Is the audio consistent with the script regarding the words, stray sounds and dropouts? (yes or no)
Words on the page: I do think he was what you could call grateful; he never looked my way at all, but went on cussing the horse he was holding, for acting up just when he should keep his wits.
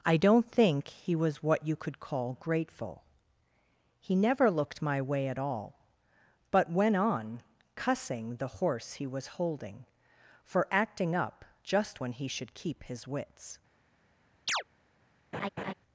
no